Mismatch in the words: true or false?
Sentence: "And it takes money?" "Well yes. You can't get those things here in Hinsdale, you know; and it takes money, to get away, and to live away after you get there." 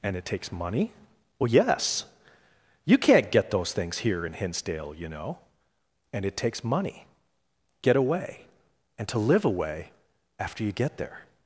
true